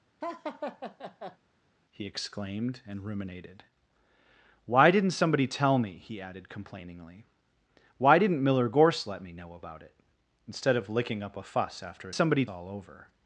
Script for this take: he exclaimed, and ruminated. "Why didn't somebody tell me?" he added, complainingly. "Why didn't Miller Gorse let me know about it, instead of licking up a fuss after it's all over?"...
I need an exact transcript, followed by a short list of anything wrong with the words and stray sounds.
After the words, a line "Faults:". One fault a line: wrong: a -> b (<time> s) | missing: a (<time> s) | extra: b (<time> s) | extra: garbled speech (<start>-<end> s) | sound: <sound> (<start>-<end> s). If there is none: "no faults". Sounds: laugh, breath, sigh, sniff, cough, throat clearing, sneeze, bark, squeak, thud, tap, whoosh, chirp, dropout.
he exclaimed, and ruminated. "Why didn't somebody tell me?" he added, complainingly. "Why didn't Miller Gorse let me know about it, instead of licking up a fuss after somebody all over?"...
Faults:
sound: laugh (0.2-1.4 s)
wrong: it's -> somebody (12.1 s)